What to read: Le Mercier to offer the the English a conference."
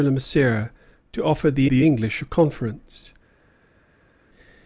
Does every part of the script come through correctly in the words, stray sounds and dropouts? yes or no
yes